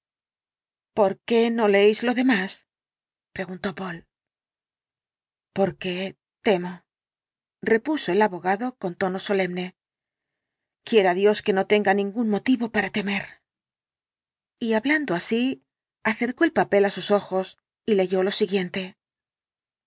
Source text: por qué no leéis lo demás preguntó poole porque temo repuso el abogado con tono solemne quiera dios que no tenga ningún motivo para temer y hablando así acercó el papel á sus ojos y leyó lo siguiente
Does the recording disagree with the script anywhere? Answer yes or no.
no